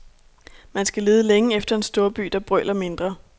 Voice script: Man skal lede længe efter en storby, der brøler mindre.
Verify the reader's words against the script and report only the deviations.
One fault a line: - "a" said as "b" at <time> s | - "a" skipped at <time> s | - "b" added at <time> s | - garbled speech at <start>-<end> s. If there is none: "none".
none